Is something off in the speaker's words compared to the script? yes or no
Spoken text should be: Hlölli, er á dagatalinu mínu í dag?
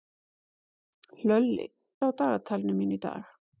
no